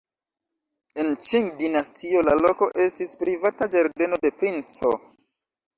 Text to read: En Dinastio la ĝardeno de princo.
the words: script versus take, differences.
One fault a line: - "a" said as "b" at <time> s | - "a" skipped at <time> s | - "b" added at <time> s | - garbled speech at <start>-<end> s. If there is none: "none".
- "Ĉing" added at 1.3 s
- "loko estis privata" added at 2.5 s